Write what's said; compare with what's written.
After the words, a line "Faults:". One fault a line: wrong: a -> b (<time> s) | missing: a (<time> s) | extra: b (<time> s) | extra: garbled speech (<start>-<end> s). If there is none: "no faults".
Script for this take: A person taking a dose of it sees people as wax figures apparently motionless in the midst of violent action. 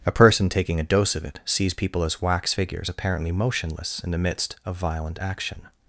A person taking a dose of it sees people as wax figures apparently motionless in the midst of violent action.
Faults:
no faults